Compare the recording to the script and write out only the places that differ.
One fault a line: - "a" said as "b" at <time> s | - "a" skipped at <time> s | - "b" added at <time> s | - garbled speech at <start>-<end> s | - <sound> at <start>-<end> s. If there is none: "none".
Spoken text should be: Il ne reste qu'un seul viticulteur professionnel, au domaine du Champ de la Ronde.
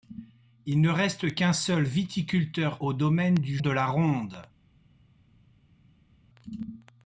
- "professionnel" skipped at 2.8 s
- "Champ" skipped at 3.6 s